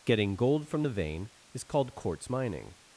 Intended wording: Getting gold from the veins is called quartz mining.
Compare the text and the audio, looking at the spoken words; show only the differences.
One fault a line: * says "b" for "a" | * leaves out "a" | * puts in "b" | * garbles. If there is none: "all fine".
* says "vein" for "veins"